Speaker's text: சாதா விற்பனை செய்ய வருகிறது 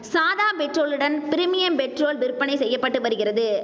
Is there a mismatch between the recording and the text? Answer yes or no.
yes